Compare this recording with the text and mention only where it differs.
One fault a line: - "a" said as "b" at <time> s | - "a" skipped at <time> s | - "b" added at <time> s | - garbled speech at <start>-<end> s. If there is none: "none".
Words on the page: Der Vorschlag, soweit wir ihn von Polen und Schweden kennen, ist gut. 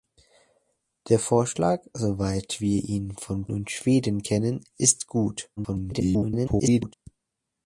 - "Polen" skipped at 3.5 s
- garbled speech at 5.6-6.9 s